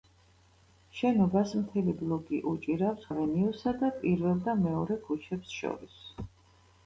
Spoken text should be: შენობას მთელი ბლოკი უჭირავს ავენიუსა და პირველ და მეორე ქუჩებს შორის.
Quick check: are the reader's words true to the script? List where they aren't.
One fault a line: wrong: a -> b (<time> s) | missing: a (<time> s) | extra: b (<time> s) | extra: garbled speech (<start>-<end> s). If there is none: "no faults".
no faults